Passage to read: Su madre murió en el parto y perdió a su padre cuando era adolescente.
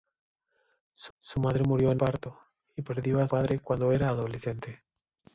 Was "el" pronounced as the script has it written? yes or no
no